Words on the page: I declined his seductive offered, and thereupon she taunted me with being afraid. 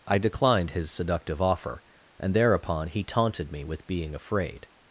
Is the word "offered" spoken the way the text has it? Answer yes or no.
no